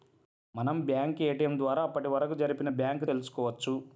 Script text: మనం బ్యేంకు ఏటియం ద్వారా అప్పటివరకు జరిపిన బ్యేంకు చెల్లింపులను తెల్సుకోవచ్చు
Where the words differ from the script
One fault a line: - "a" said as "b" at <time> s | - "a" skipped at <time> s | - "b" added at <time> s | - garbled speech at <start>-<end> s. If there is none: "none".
- "చెల్లింపులను" skipped at 3.1 s